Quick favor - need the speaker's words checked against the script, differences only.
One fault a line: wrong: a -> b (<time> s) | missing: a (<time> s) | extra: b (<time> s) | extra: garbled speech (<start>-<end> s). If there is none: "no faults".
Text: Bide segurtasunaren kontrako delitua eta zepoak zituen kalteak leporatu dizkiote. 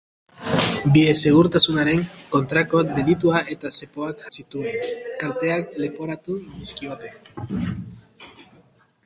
no faults